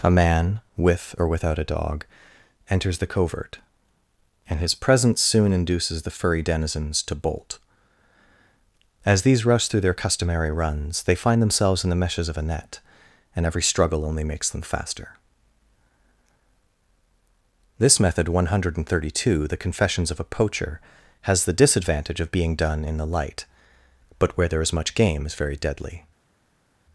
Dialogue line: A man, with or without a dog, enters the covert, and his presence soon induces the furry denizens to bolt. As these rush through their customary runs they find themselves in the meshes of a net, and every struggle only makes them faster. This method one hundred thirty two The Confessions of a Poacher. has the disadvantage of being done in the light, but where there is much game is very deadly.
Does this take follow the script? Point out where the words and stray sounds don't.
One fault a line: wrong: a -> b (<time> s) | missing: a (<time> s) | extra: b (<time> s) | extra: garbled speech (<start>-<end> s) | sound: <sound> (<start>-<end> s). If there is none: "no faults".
no faults